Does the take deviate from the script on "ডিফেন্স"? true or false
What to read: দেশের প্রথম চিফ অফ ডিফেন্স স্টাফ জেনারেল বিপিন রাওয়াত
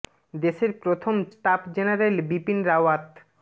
true